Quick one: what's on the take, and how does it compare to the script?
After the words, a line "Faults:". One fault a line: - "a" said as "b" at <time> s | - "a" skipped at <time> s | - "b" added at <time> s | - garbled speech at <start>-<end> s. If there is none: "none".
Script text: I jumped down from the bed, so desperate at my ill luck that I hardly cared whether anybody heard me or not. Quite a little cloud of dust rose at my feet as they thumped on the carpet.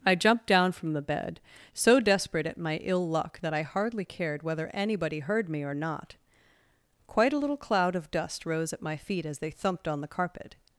I jumped down from the bed, so desperate at my ill luck that I hardly cared whether anybody heard me or not. Quite a little cloud of dust rose at my feet as they thumped on the carpet.
Faults:
none